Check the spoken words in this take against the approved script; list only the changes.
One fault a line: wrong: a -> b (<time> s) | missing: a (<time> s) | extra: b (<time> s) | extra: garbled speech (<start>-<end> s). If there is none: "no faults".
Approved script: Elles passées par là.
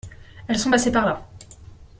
extra: sont (0.6 s)